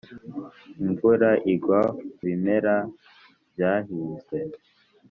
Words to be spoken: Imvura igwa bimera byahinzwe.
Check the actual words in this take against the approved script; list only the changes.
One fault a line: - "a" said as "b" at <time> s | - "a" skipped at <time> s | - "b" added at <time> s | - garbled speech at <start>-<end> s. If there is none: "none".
none